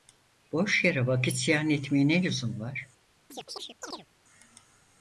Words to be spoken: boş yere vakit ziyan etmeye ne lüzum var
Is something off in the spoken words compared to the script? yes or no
no